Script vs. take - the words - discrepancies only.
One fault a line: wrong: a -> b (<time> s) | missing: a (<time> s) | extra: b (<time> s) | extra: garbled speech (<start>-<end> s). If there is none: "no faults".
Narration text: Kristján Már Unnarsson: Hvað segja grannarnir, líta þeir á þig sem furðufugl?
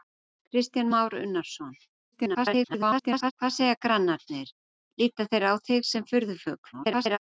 extra: garbled speech (2.1-3.3 s)
extra: garbled speech (6.7-7.2 s)